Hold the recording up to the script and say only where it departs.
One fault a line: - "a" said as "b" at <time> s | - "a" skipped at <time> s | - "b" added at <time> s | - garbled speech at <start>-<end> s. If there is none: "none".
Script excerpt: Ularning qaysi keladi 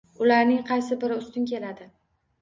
- "biri ustun" added at 1.0 s